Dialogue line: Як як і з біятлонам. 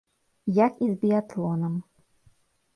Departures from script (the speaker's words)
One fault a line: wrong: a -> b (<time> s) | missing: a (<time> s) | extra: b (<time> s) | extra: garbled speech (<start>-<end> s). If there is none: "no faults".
missing: як (0.7 s)